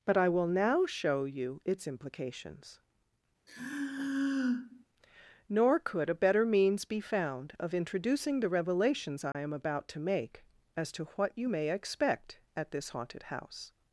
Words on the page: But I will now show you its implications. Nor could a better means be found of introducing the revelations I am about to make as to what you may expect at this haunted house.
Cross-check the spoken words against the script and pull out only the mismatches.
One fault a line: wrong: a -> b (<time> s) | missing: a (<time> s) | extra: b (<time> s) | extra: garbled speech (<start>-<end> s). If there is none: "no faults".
no faults